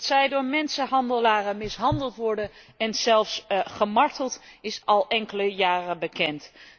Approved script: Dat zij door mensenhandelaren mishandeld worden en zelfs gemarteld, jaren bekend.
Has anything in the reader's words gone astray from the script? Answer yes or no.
yes